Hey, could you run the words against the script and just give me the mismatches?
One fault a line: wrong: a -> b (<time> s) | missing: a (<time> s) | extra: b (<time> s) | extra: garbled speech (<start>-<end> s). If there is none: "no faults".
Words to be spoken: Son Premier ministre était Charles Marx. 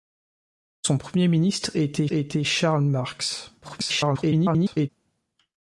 extra: était (2.1 s)
extra: garbled speech (3.6-4.9 s)